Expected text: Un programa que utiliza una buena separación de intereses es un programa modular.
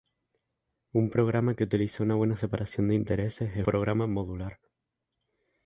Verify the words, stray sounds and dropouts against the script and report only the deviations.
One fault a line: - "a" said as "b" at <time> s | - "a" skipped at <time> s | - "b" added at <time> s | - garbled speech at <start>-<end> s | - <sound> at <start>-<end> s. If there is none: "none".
- "un" skipped at 3.6 s